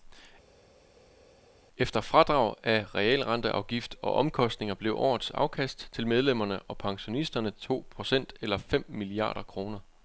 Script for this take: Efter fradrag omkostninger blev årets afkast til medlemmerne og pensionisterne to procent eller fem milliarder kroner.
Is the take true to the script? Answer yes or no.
no